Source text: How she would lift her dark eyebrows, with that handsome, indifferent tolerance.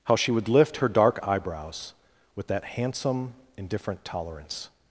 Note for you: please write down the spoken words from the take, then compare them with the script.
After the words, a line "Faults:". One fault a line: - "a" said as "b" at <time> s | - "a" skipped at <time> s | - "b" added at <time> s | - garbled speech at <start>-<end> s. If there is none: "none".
How she would lift her dark eyebrows, with that handsome, indifferent tolerance.
Faults:
none